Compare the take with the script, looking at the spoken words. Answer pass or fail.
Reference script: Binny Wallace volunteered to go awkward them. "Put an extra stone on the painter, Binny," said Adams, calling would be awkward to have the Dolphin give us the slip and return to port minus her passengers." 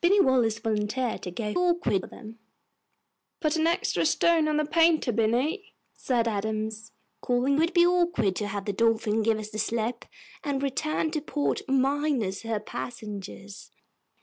pass